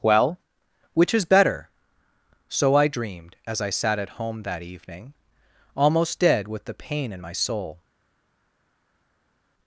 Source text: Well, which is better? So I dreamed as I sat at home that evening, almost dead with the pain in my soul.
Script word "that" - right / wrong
right